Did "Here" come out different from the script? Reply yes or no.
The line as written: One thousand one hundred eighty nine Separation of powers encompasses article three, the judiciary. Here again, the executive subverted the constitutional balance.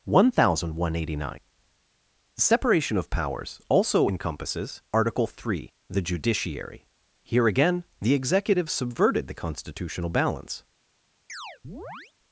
no